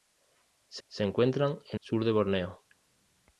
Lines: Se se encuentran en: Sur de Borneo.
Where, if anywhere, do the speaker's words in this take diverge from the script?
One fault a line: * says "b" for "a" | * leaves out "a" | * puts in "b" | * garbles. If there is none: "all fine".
all fine